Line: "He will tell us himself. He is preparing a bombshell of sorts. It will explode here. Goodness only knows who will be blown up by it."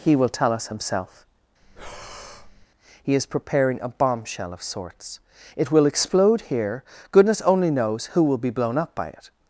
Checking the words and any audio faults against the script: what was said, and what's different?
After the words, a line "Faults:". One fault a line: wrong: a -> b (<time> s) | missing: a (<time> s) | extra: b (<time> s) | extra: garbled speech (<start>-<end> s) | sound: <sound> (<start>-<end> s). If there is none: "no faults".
"He will tell us himself. He is preparing a bombshell of sorts. It will explode here. Goodness only knows who will be blown up by it."
Faults:
sound: breath (1.6-2.7 s)